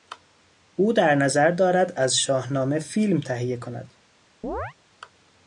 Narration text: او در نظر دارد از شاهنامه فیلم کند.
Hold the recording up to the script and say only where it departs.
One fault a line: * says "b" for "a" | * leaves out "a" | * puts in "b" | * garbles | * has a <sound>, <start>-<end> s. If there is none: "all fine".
* puts in "تهیه"
* has a chirp, 4.4-4.7 s